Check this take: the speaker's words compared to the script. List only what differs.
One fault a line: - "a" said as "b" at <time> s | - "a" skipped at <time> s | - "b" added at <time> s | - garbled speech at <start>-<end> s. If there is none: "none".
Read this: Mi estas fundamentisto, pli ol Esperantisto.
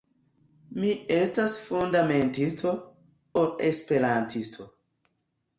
- "pli" skipped at 2.7 s